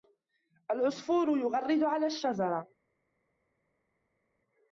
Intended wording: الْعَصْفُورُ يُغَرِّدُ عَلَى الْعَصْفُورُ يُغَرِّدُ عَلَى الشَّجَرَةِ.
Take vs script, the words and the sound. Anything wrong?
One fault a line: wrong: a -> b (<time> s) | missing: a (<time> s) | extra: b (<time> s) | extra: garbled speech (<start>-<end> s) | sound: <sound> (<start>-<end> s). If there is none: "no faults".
missing: الْعَصْفُورُ يُغَرِّدُ عَلَى (2.0 s)